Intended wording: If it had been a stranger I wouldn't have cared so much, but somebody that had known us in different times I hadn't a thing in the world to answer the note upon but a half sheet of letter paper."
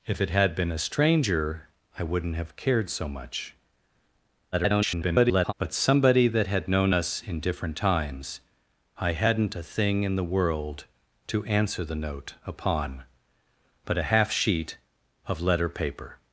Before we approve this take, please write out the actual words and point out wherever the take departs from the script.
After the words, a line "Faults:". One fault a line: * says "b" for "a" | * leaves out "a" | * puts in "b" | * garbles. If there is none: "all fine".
If it had been a stranger I wouldn't have cared so much, [garbled] but somebody that had known us in different times I hadn't a thing in the world to answer the note upon but a half sheet of letter paper."
Faults:
* garbles